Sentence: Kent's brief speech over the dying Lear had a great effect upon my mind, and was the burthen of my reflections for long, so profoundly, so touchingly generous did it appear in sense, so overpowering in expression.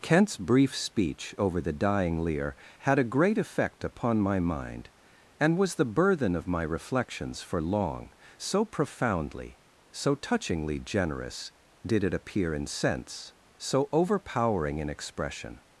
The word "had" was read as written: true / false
true